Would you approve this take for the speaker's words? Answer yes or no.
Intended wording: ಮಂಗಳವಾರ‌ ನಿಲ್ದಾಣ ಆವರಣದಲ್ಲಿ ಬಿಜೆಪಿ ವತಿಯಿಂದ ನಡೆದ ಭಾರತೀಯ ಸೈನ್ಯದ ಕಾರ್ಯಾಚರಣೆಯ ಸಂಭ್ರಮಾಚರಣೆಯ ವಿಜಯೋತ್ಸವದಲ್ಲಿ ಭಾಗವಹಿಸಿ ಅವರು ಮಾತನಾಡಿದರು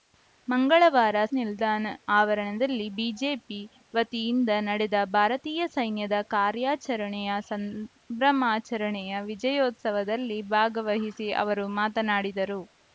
yes